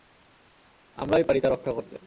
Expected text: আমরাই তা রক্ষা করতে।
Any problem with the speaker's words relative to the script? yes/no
yes